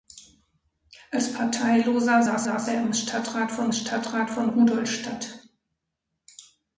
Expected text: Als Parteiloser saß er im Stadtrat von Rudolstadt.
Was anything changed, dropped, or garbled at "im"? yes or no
no